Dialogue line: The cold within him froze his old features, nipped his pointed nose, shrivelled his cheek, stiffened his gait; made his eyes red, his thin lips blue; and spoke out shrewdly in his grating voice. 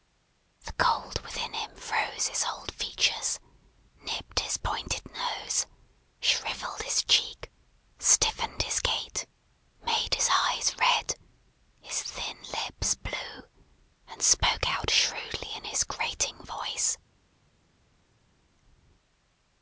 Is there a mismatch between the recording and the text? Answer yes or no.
no